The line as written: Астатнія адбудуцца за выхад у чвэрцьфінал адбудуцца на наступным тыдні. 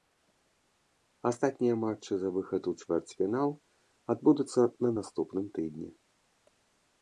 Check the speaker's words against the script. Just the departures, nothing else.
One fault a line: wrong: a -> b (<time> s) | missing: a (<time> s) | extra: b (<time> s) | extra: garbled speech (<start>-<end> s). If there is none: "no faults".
wrong: адбудуцца -> матчы (1.8 s)